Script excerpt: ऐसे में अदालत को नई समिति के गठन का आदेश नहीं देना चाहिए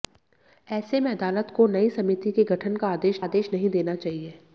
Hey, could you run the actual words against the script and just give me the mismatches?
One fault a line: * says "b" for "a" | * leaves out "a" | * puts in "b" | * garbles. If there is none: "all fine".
* puts in "आदेश"